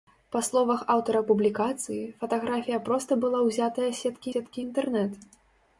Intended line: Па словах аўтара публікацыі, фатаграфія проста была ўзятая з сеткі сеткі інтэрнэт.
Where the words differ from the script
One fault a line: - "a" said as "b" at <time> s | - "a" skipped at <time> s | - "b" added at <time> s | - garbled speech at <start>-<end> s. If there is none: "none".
none